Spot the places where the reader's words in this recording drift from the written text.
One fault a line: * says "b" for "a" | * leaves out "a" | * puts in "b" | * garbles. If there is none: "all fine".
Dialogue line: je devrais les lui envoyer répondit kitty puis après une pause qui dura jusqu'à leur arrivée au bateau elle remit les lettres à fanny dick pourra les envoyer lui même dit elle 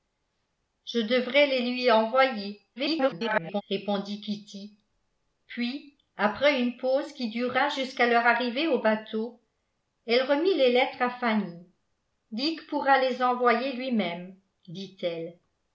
* garbles